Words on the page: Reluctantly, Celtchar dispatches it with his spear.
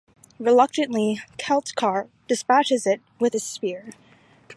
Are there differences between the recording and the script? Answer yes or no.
no